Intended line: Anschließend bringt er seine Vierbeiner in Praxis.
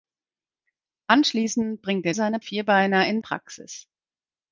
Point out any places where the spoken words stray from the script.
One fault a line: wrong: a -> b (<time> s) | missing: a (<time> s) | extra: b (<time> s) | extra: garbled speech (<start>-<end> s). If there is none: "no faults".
no faults